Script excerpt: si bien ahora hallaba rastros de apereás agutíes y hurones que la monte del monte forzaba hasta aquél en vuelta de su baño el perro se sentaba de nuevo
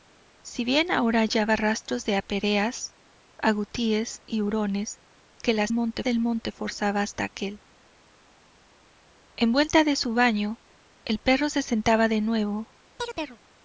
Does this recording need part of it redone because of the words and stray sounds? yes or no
yes